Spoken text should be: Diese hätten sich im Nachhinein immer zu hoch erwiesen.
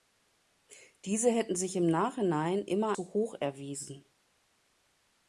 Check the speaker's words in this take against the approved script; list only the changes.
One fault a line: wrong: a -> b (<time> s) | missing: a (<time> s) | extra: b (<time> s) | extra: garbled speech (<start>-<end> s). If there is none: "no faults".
no faults